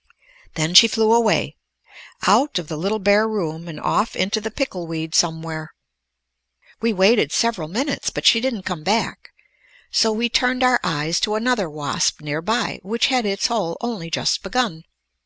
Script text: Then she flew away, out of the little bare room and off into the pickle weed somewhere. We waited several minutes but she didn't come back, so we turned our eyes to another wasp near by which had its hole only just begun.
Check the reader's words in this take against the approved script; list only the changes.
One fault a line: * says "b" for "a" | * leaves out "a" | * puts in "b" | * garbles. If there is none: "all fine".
all fine